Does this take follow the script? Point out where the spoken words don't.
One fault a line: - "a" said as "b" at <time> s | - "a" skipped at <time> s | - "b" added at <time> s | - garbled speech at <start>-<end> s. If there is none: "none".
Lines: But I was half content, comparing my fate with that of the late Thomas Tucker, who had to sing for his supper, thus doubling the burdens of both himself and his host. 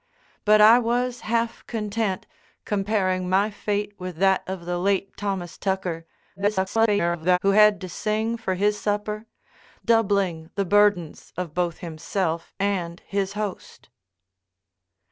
- garbled speech at 6.4-7.4 s
- "thus" skipped at 9.3 s